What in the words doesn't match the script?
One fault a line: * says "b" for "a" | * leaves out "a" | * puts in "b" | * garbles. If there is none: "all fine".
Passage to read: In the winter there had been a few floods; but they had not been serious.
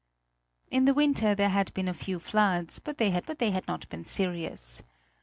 * puts in "but they had"